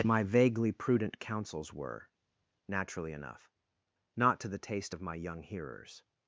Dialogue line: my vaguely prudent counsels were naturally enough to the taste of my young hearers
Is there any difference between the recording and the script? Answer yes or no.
yes